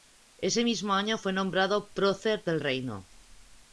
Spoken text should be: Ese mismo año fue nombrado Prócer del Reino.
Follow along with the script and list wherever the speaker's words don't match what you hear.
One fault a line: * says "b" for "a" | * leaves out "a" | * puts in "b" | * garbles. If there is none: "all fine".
all fine